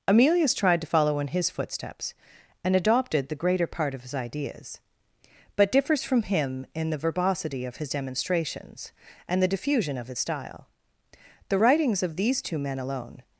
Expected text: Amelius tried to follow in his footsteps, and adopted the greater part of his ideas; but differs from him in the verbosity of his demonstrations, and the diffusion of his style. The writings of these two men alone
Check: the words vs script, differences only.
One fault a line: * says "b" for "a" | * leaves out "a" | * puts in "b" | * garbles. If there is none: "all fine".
all fine